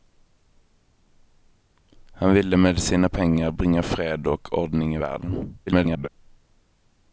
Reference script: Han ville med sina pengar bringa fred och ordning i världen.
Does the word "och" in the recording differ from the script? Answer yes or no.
no